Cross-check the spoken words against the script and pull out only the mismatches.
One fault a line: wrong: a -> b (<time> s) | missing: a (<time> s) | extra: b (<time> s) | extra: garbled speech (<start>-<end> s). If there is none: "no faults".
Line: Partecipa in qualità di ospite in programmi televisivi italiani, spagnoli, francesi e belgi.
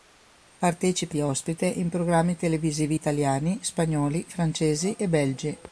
missing: in qualità (1.1 s)